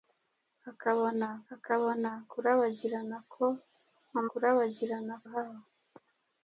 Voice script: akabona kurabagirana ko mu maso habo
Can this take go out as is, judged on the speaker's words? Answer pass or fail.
fail